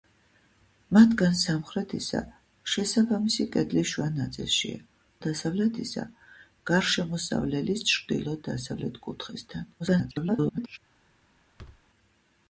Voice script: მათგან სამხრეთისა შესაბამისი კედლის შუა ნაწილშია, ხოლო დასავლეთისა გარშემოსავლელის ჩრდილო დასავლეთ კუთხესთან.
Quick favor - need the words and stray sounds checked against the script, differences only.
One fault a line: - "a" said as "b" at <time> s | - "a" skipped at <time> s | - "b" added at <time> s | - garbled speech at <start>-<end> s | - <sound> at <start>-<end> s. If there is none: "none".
- "ხოლო" skipped at 4.8 s
- garbled speech at 9.8-10.8 s
- thud at 11.6-11.8 s